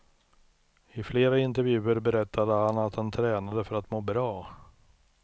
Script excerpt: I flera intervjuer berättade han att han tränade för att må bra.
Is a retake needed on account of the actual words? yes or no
no